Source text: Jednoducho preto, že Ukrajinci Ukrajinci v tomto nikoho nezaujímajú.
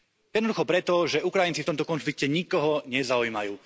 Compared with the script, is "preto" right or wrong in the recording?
right